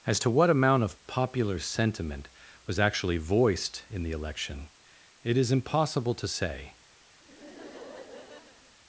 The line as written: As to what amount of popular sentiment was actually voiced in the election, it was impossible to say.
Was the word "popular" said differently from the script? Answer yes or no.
no